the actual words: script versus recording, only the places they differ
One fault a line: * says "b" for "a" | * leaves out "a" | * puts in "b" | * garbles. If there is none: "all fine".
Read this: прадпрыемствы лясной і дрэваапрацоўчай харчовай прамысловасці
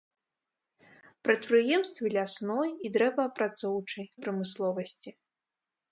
* leaves out "харчовай"